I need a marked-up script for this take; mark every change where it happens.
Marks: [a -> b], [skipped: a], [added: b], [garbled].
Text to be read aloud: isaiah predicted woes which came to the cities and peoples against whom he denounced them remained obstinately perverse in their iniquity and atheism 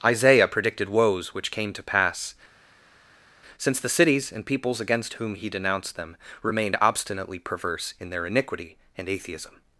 isaiah predicted woes which came to [added: pass since] the cities and peoples against whom he denounced them remained obstinately perverse in their iniquity and atheism